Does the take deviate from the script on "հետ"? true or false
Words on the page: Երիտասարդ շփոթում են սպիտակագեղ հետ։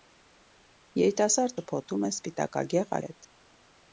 false